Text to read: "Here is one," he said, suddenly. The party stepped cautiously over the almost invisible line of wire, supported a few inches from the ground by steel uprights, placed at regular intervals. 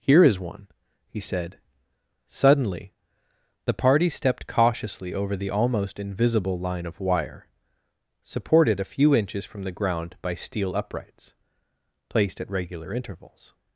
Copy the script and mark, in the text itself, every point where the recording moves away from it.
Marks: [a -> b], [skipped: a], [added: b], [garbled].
"Here is one," he said, suddenly. The party stepped cautiously over the almost invisible line of wire, supported a few inches from the ground by steel uprights, placed at regular intervals.